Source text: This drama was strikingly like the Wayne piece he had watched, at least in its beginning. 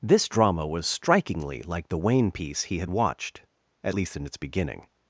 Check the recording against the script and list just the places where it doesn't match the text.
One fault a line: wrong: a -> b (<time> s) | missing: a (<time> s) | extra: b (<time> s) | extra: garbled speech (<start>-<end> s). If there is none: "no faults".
no faults